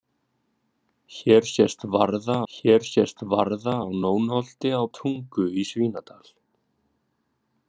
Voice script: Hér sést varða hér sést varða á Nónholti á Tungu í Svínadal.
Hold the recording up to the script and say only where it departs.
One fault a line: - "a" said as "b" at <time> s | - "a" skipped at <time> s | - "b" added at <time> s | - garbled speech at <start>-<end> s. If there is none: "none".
none